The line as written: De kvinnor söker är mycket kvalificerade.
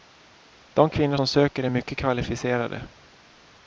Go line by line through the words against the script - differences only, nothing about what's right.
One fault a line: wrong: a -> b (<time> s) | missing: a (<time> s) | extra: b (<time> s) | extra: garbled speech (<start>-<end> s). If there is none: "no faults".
extra: som (1.1 s)